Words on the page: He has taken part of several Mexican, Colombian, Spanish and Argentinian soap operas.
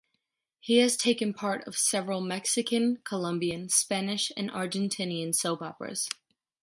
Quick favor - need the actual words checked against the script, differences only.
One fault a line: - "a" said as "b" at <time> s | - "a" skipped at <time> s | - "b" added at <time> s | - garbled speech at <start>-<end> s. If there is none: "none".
none